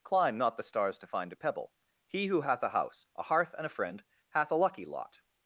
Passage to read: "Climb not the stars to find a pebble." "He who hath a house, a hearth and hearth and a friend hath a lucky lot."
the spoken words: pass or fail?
fail